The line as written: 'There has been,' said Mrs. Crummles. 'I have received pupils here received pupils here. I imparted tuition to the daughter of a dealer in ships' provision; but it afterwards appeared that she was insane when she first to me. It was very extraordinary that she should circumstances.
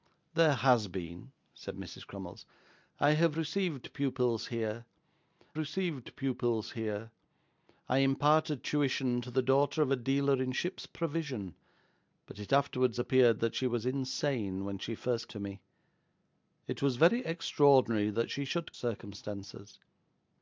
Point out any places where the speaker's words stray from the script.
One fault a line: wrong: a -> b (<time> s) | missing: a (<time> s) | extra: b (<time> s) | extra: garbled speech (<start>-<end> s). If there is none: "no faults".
no faults